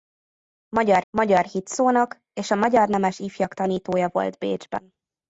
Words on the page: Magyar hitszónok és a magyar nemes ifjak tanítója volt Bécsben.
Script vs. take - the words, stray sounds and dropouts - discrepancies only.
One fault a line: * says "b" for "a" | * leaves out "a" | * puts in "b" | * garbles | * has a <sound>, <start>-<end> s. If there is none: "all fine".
* puts in "magyar"